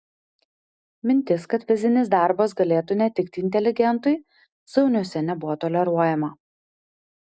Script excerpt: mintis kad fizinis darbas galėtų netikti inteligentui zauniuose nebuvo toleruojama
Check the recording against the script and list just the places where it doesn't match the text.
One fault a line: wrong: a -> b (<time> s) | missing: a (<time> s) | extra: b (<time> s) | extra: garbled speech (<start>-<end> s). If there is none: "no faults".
no faults